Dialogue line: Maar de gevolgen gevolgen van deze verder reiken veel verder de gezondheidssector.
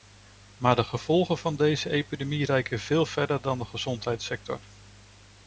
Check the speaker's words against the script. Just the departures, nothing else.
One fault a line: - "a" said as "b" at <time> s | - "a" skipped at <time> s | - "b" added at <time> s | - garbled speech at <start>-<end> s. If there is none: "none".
- "gevolgen" skipped at 1.4 s
- "verder" said as "epidemie" at 1.9 s
- "dan" added at 3.4 s